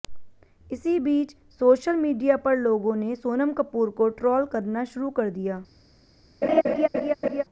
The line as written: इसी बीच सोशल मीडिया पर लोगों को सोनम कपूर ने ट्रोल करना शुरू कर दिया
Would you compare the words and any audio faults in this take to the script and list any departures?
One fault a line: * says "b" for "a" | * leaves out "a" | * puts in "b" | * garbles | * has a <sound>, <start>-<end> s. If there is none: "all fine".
* says "ने" for "को"
* says "को" for "ने"
* has a laugh, 6.4-7.4 s